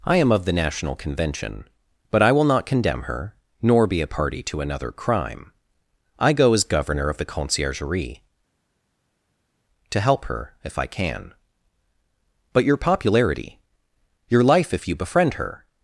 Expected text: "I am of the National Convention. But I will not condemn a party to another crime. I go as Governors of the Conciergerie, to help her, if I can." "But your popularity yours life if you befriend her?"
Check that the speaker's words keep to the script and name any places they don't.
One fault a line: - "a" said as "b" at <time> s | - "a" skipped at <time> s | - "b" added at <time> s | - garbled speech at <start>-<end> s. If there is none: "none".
- "her nor be" added at 3.0 s
- "Governors" said as "Governor" at 6.6 s
- "yours" said as "your" at 14.3 s